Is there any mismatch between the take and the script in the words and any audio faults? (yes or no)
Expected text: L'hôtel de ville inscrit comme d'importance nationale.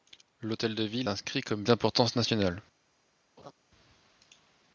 yes